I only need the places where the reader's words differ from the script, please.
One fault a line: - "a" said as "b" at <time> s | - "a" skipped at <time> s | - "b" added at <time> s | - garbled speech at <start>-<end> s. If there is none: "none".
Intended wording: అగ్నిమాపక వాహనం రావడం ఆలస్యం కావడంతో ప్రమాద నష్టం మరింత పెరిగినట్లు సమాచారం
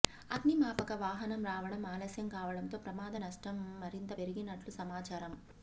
none